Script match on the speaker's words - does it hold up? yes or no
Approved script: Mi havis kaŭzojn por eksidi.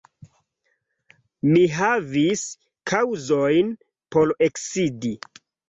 yes